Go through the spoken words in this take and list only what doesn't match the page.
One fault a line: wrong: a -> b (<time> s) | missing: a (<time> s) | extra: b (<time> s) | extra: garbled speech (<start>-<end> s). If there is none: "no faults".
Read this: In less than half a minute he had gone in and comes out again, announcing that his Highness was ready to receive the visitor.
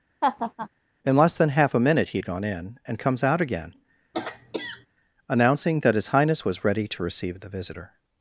no faults